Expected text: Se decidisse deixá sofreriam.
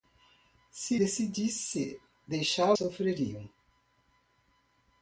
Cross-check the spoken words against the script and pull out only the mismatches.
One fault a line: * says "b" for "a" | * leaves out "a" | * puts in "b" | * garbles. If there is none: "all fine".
all fine